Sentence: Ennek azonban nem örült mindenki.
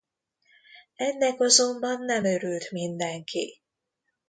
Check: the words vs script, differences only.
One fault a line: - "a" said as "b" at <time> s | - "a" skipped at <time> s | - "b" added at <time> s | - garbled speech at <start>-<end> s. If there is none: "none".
none